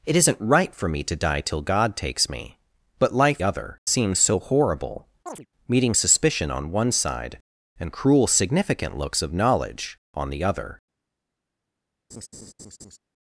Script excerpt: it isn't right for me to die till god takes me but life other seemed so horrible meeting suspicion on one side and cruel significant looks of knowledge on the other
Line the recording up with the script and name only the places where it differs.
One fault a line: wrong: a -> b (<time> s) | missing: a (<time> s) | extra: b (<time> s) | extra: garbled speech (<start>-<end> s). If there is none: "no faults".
no faults